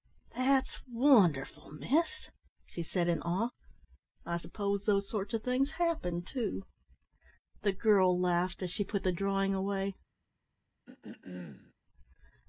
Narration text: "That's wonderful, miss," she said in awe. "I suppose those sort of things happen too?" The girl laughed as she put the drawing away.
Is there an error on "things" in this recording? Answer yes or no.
no